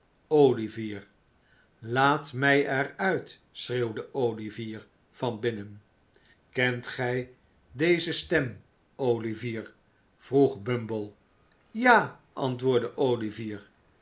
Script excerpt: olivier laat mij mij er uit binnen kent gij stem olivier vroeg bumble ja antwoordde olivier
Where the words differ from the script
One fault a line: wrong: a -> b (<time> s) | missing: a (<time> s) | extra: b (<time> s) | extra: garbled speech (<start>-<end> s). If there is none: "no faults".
missing: mij (2.6 s)
extra: schreeuwde olivier van (3.5 s)
extra: deze (7.7 s)